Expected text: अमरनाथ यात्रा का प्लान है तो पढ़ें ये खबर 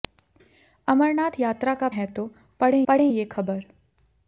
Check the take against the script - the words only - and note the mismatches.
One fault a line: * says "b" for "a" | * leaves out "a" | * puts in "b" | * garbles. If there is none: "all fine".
* leaves out "प्लान"
* puts in "पढ़ें"